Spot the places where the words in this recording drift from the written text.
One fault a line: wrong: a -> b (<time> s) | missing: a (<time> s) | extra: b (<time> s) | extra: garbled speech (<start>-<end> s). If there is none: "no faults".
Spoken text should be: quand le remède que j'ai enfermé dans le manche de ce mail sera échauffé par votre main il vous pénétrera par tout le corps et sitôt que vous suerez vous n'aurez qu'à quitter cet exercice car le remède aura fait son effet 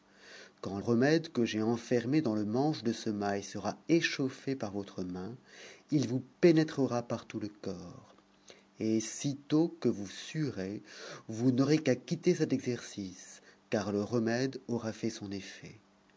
missing: le (0.8 s)